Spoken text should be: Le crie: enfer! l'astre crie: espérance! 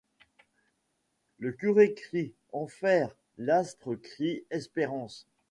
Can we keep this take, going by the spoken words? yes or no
no